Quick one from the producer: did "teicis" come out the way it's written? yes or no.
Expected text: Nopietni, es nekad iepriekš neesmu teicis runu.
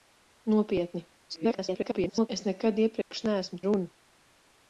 no